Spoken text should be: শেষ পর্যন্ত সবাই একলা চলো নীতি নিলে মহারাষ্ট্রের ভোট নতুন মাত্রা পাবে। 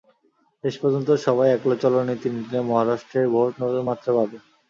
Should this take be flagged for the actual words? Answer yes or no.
no